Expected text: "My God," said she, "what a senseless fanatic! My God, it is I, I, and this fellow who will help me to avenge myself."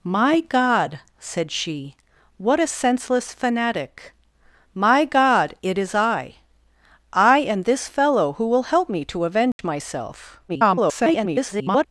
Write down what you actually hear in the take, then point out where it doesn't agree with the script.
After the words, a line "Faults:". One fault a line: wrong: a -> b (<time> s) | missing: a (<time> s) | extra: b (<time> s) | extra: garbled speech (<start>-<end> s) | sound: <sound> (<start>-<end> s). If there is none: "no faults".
"My God," said she, "what a senseless fanatic! My God, it is I, I, and this fellow who will help me to avenge myself." [garbled]
Faults:
sound: dropout (9.5-9.6 s)
extra: garbled speech (10.5-11.8 s)